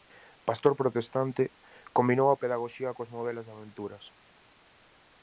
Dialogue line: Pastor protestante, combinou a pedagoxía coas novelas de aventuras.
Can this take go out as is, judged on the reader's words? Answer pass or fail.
pass